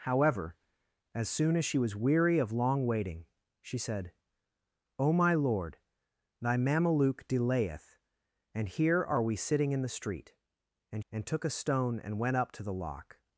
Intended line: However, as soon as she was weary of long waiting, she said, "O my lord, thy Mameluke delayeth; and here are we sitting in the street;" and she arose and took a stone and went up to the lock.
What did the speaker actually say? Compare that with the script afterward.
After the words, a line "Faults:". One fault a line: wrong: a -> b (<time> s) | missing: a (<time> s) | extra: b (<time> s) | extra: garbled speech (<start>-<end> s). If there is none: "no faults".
However, as soon as she was weary of long waiting, she said, "O my lord, thy Mameluke delayeth; and here are we sitting in the street;" and and took a stone and went up to the lock.
Faults:
missing: she arose (11.1 s)